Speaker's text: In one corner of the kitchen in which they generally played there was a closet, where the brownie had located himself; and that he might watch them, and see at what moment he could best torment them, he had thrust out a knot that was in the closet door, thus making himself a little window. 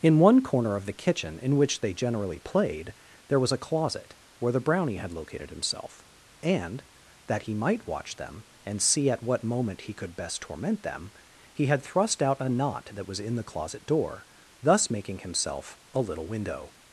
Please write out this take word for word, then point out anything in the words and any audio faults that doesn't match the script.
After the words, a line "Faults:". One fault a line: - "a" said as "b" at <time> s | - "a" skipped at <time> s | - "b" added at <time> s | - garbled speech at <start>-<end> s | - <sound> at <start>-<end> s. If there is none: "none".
In one corner of the kitchen in which they generally played there was a closet, where the brownie had located himself; and that he might watch them, and see at what moment he could best torment them, he had thrust out a knot that was in the closet door, thus making himself a little window.
Faults:
none